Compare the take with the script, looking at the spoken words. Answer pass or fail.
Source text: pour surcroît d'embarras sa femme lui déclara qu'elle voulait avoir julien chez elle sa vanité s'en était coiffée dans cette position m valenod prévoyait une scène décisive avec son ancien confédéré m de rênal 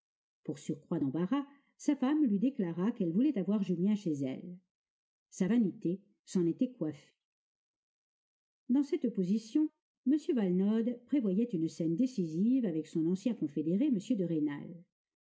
pass